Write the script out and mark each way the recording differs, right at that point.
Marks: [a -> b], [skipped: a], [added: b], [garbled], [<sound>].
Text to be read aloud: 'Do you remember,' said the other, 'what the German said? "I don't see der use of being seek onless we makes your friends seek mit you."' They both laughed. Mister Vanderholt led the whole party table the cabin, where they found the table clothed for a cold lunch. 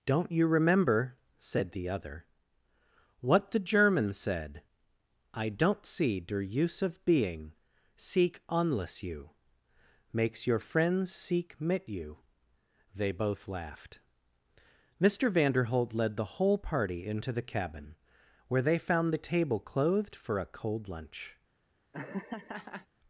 ['Do -> Don't] you remember,' said the other, 'what the German said? "I don't see der use of being seek onless [we -> you] makes your friends seek mit you."' They both laughed. Mister Vanderholt led the whole party [table -> into] the cabin, where they found the table clothed for a cold lunch. [laugh]